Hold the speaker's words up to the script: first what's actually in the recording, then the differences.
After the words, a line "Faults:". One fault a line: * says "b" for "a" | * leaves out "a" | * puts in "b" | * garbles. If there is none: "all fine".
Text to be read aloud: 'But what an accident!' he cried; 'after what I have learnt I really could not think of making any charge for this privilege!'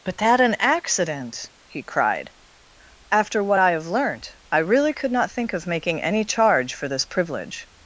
'But that an accident!' he cried; 'after what I have learnt I really could not think of making any charge for this privilege!'
Faults:
* says "that" for "what"